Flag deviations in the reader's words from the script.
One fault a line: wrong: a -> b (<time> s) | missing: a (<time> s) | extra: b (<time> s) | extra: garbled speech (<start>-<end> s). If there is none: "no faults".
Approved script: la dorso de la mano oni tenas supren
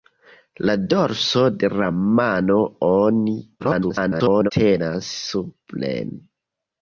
extra: garbled speech (3.6-4.5 s)